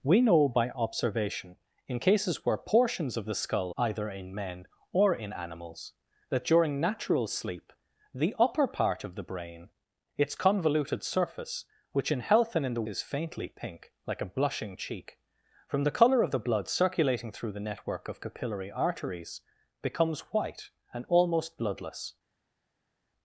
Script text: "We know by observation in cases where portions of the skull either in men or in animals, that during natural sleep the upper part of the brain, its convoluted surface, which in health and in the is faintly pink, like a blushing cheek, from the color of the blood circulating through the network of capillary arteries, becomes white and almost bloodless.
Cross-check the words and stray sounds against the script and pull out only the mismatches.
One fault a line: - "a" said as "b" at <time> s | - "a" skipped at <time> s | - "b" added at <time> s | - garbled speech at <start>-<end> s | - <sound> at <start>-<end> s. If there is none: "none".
none